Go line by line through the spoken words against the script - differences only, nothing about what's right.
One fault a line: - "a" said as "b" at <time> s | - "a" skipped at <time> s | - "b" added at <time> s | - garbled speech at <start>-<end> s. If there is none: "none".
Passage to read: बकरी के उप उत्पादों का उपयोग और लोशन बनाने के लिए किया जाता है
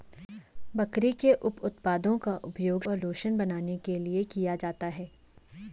none